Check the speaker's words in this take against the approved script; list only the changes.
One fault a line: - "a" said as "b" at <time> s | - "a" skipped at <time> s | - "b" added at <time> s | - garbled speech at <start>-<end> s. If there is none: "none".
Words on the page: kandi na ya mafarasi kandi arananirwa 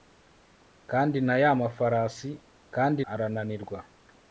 none